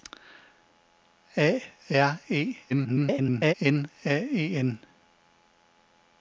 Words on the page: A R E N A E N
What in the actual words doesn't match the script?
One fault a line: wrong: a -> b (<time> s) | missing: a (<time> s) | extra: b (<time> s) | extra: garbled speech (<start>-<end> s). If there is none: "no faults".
extra: garbled speech (2.7-3.5 s)